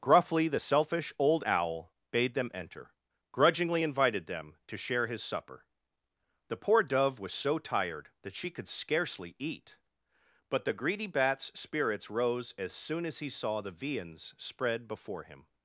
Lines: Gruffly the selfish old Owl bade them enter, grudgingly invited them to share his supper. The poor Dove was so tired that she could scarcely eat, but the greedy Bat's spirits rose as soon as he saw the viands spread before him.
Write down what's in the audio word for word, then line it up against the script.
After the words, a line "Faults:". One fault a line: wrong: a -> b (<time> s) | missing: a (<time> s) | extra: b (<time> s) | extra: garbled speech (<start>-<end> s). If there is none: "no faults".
Gruffly the selfish old Owl bade them enter, grudgingly invited them to share his supper. The poor Dove was so tired that she could scarcely eat, but the greedy Bat's spirits rose as soon as he saw the viands spread before him.
Faults:
no faults